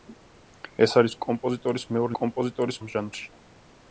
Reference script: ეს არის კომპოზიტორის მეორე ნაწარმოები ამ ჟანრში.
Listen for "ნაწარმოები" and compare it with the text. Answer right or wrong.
wrong